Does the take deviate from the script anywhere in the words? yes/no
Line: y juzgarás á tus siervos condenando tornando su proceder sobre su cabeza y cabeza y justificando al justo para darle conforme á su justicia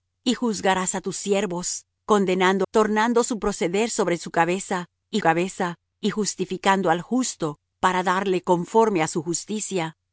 no